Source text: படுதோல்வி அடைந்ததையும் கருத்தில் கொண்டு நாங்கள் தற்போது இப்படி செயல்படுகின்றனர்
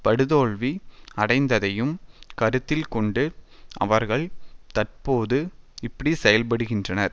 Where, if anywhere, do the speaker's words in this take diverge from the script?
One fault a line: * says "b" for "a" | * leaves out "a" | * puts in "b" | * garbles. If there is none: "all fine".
* says "அவர்கள்" for "நாங்கள்"